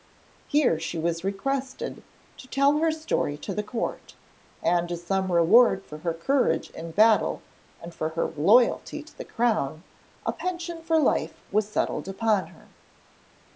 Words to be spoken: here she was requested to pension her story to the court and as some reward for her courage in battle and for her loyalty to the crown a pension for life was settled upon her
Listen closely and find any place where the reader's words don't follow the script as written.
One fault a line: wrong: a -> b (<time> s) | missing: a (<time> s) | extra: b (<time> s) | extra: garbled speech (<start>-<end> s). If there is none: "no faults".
wrong: pension -> tell (2.5 s)